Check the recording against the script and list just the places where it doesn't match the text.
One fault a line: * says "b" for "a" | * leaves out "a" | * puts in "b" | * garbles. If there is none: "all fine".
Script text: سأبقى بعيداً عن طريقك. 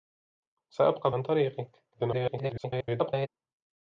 * leaves out "بعيداً"
* garbles